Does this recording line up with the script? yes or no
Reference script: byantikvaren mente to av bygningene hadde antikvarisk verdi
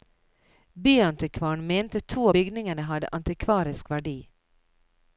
no